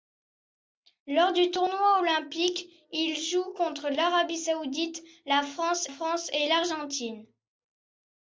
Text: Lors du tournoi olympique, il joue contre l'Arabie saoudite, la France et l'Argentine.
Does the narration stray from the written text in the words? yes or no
yes